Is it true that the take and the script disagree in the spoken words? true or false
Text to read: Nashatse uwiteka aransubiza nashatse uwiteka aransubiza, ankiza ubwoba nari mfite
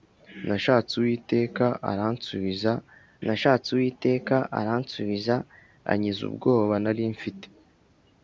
false